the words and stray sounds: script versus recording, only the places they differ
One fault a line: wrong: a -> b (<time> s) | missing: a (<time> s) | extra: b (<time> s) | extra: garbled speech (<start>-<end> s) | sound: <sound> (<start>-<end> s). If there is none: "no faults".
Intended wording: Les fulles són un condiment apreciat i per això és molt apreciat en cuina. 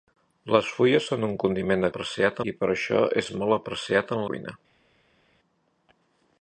no faults